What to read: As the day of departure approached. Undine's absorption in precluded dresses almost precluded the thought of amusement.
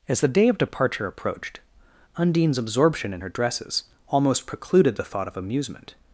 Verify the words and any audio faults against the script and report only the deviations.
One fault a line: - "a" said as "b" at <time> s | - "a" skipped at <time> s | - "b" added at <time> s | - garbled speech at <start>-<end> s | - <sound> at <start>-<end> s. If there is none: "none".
- "precluded" said as "her" at 3.2 s